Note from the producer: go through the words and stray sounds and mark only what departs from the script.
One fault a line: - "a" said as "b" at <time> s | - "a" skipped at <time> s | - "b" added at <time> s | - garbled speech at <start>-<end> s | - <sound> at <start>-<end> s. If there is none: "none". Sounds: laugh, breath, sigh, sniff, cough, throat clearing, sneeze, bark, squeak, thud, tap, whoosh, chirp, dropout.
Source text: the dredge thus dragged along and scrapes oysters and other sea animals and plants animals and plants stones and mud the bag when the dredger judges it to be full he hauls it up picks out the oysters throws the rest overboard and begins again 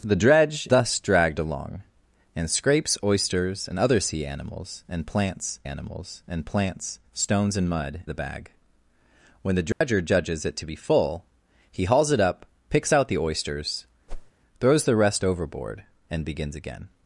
- dropout at 9.7-9.8 s
- whoosh at 14.1-14.3 s